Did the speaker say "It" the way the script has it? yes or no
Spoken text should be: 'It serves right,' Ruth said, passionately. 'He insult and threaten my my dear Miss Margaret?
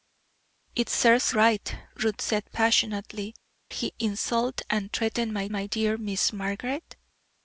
yes